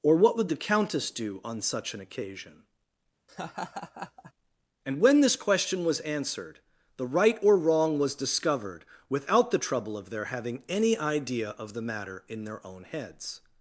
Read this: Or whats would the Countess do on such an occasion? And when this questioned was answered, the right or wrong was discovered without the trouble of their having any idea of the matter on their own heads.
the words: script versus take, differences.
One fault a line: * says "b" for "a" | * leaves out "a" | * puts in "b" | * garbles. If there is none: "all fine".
* says "what" for "whats"
* says "question" for "questioned"
* says "in" for "on"